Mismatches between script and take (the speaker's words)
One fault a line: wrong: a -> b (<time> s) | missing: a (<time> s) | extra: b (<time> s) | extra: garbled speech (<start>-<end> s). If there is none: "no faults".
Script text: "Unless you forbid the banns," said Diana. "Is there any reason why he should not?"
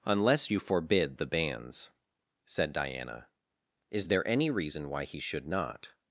no faults